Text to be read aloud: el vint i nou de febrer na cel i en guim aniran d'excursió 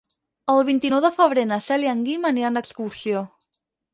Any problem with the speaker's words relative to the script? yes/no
no